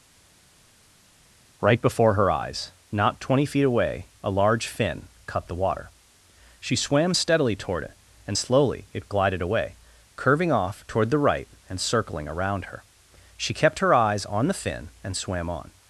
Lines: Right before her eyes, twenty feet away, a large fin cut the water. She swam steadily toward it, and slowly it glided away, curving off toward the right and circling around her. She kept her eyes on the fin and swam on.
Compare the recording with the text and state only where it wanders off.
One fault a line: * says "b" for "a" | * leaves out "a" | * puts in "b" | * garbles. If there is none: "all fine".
* puts in "not"